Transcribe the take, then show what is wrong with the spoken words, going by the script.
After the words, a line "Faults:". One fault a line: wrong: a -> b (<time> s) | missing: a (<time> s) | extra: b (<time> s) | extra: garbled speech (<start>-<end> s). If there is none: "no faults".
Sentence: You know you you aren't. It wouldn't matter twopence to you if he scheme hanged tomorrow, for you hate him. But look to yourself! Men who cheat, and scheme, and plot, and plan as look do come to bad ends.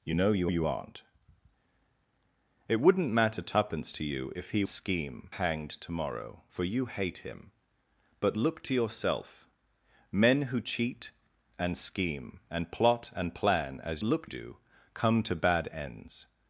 You know you you aren't. It wouldn't matter twopence to you if he scheme hanged tomorrow, for you hate him. But look to yourself! Men who cheat, and scheme, and plot, and plan as look do come to bad ends.
Faults:
no faults